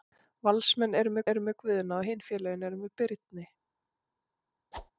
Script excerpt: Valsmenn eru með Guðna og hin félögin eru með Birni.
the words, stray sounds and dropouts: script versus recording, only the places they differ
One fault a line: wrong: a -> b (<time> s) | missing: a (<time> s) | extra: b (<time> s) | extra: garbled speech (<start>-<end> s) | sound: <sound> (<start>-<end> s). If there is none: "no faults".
extra: eru með (1.3 s)
sound: whoosh (4.7-4.9 s)